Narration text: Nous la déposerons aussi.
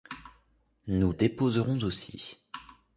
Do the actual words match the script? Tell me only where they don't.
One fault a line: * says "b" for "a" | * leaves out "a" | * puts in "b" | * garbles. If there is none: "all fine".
* leaves out "la"